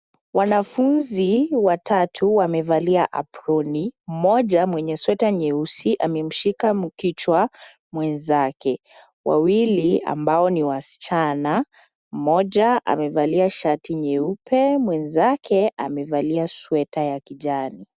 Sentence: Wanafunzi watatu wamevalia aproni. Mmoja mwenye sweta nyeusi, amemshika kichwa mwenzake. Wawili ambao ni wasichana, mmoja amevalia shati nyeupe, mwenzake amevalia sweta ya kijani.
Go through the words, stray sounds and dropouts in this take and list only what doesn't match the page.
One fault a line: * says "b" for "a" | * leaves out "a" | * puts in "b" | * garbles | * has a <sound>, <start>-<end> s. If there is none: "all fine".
all fine